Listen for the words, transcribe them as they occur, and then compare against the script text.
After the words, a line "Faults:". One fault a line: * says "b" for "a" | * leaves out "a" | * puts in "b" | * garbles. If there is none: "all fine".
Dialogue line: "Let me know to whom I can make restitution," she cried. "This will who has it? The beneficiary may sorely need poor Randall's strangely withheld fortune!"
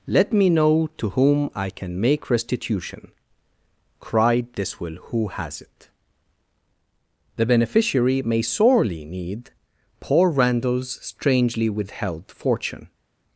"Let me know to whom I can make restitution," cried. "This will who has it? The beneficiary may sorely need poor Randall's strangely withheld fortune!"
Faults:
* leaves out "she"